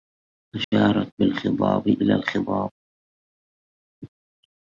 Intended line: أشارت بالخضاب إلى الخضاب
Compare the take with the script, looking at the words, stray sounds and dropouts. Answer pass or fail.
fail